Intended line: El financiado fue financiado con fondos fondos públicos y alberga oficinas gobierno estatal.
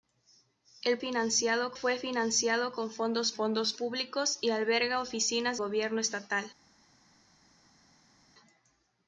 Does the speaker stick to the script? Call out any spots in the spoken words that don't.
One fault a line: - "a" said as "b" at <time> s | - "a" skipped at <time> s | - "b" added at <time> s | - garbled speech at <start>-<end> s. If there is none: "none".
none